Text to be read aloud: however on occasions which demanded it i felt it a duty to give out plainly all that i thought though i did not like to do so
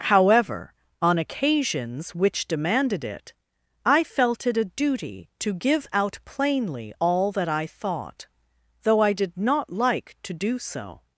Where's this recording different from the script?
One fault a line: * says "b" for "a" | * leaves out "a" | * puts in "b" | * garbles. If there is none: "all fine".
all fine